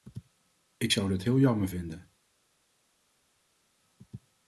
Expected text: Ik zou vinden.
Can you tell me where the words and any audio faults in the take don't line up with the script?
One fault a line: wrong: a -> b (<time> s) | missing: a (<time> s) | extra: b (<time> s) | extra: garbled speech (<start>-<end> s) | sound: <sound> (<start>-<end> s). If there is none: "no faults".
extra: dat heel jammer (1.1 s)